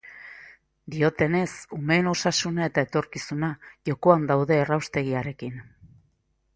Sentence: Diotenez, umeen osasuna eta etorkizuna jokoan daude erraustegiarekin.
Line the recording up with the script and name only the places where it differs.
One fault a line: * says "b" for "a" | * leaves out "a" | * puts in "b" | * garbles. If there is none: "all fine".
all fine